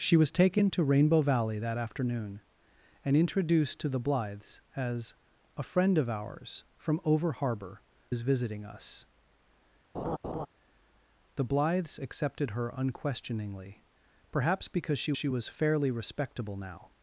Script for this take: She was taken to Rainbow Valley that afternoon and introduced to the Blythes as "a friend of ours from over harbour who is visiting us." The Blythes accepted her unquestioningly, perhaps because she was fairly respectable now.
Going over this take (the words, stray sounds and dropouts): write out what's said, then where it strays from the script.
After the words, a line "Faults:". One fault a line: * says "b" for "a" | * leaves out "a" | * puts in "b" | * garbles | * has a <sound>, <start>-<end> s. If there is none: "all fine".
She was taken to Rainbow Valley that afternoon and introduced to the Blythes as "a friend of ours from over harbour is visiting us." The Blythes accepted her unquestioningly, perhaps because she she was fairly respectable now.
Faults:
* leaves out "who"
* has a laugh, 9.9-10.5 s
* puts in "she"